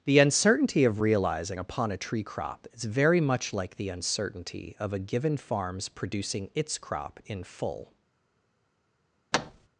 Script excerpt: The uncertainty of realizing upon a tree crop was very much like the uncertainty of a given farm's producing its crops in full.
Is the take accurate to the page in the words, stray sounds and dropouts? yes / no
no